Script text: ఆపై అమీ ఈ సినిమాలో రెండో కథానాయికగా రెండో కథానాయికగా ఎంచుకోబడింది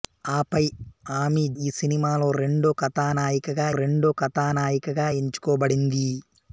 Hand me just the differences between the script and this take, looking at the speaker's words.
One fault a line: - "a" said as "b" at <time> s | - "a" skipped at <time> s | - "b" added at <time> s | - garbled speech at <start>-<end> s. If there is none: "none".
none